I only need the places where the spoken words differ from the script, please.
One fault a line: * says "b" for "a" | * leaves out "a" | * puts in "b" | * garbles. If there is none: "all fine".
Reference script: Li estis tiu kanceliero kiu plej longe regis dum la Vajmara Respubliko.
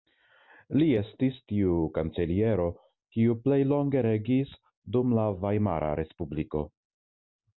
all fine